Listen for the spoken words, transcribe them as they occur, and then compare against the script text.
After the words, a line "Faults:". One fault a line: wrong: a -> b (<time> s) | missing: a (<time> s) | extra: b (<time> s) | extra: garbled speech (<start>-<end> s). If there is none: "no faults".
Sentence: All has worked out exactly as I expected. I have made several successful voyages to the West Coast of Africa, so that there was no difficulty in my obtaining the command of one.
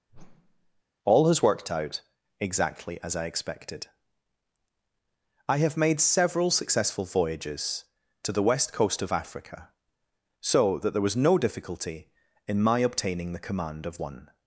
All has worked out exactly as I expected. I have made several successful voyages to the West Coast of Africa, so that there was no difficulty in my obtaining the command of one.
Faults:
no faults